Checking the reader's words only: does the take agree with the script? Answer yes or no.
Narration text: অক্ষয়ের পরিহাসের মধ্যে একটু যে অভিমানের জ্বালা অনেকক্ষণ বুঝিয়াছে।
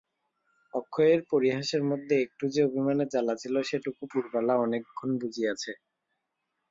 no